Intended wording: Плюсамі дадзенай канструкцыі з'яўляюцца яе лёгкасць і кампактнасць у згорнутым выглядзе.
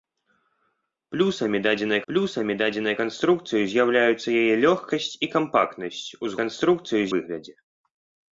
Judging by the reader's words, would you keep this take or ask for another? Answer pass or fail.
fail